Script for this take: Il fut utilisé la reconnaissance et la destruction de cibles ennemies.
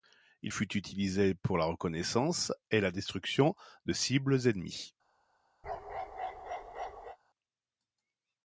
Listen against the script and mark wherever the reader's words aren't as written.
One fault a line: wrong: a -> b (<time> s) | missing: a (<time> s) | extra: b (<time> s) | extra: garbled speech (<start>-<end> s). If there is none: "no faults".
extra: pour (1.3 s)